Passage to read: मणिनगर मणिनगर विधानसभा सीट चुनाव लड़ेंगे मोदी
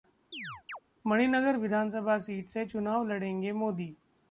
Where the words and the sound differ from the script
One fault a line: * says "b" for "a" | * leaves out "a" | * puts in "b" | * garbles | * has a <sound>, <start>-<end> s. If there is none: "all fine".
* has a chirp, 0.3-0.8 s
* leaves out "मणिनगर"
* puts in "से"